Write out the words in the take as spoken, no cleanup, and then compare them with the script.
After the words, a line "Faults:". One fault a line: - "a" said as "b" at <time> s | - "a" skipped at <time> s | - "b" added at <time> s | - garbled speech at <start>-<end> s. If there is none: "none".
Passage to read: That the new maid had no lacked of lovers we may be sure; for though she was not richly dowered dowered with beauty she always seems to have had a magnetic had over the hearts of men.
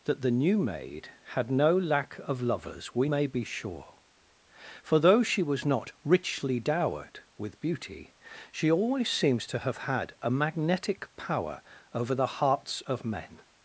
That the new maid had no lack of lovers we may be sure; for though she was not richly dowered with beauty she always seems to have had a magnetic power over the hearts of men.
Faults:
- "lacked" said as "lack" at 1.8 s
- "dowered" skipped at 7.2 s
- "had" said as "power" at 11.2 s